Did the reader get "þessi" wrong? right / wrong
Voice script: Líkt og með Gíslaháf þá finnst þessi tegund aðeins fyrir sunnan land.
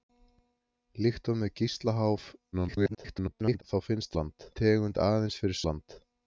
wrong